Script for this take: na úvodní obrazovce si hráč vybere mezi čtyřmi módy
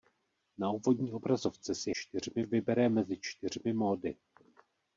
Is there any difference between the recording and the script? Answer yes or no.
yes